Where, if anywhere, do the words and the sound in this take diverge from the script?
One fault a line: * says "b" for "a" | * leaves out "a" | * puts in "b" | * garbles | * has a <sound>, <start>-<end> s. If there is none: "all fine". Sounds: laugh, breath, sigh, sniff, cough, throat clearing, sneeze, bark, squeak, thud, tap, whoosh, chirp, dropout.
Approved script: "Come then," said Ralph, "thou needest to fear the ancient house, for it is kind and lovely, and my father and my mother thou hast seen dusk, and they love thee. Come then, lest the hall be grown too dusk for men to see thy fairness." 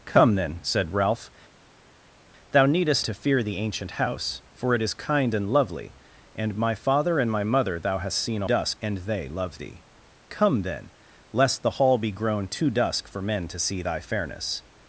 all fine